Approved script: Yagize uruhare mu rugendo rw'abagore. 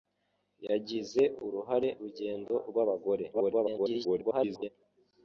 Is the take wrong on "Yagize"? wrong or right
right